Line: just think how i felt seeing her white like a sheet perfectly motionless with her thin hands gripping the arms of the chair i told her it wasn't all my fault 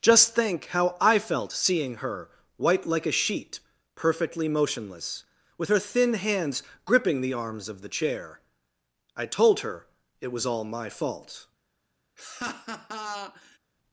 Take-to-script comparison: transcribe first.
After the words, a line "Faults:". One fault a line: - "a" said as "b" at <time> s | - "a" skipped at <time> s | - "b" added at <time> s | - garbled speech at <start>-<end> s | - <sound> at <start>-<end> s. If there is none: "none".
just think how i felt seeing her white like a sheet perfectly motionless with her thin hands gripping the arms of the chair i told her it was all my fault
Faults:
- "wasn't" said as "was" at 10.3 s
- laugh at 12.2-13.6 s